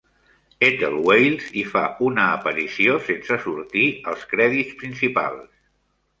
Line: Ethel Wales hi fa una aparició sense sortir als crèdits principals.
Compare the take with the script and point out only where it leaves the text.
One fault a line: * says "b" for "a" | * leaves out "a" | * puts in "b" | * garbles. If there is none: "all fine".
all fine